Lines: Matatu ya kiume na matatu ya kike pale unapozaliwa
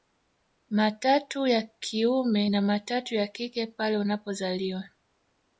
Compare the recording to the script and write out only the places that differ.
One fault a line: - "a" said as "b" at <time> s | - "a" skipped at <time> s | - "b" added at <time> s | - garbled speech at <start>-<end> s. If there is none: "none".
none